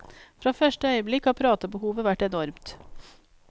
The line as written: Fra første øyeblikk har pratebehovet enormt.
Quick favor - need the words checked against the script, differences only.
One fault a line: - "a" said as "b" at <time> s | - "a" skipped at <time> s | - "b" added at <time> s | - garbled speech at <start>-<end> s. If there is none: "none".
- "vært" added at 2.1 s